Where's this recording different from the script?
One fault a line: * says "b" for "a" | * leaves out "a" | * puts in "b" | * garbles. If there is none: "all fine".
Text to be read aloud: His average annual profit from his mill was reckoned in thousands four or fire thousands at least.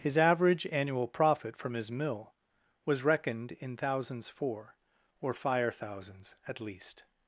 all fine